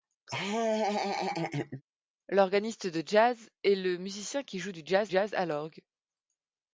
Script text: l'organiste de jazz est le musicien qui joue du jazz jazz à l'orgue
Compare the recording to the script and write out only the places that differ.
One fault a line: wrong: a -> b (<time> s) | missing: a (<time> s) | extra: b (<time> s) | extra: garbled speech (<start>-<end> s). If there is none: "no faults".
no faults